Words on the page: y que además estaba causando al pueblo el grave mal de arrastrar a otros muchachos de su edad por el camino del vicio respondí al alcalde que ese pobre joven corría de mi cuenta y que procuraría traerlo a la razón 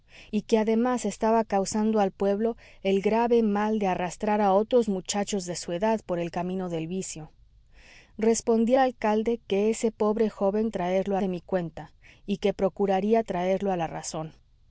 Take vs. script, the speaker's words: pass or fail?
fail